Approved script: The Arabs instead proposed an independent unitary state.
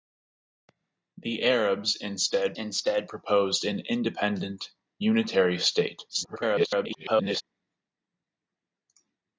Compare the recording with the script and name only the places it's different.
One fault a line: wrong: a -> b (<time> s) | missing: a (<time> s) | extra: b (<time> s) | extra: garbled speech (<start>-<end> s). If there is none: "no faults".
extra: instead (2.5 s)
extra: garbled speech (6.1-7.4 s)